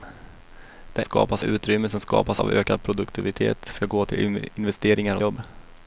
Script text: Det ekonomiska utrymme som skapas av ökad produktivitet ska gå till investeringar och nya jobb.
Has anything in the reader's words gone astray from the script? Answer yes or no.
yes